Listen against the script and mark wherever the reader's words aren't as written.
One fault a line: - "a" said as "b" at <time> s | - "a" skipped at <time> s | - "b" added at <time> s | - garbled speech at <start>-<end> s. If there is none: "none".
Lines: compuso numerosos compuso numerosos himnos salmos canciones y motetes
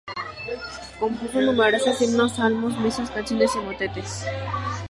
- "compuso numerosos" skipped at 2.0 s
- "misas" added at 2.8 s